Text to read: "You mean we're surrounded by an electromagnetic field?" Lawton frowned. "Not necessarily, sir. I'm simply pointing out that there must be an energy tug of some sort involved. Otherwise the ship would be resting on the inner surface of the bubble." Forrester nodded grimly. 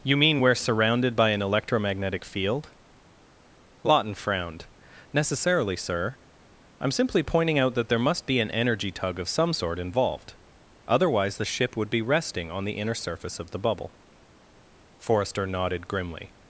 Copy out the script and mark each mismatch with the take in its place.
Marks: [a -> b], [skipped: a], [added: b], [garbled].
"You mean we're surrounded by an electromagnetic field?" Lawton frowned. [skipped: "Not] necessarily, sir. I'm simply pointing out that there must be an energy tug of some sort involved. Otherwise the ship would be resting on the inner surface of the bubble." Forrester nodded grimly.